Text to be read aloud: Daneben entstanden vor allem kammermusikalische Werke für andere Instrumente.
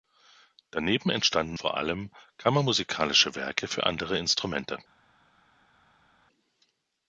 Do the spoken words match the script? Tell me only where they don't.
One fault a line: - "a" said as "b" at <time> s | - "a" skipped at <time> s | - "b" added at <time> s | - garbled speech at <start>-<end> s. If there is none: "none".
none